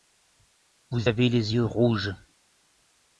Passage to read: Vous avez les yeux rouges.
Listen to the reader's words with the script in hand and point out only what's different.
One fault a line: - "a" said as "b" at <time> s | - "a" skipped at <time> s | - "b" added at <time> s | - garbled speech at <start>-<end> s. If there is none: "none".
none